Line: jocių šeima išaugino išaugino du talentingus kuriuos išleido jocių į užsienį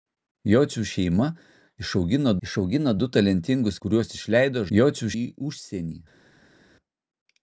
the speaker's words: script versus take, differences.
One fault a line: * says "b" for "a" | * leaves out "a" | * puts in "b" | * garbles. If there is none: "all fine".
all fine